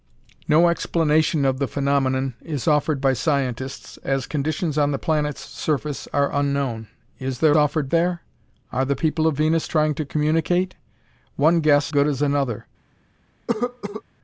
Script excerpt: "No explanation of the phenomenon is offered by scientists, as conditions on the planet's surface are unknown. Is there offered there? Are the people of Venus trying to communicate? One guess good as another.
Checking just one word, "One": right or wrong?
right